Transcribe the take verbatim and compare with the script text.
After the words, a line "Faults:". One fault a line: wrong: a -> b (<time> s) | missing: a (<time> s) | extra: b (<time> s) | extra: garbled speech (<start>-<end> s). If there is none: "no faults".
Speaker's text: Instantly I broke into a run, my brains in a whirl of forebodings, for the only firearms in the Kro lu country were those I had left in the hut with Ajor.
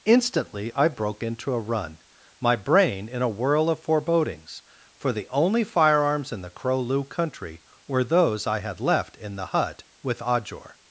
Instantly I broke into a run, my brain in a whirl of forebodings, for the only firearms in the Kro lu country were those I had left in the hut with Ajor.
Faults:
wrong: brains -> brain (2.6 s)